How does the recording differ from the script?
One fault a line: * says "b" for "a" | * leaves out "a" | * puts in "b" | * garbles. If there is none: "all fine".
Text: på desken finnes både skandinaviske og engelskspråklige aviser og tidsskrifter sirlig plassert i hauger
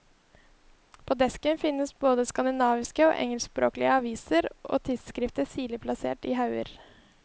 all fine